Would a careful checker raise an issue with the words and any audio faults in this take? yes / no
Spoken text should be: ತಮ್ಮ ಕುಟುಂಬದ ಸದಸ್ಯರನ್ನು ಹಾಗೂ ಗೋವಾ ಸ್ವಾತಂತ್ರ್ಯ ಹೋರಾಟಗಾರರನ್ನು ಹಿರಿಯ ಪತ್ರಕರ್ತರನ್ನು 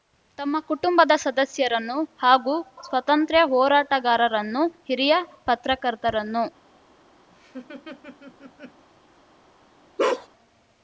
yes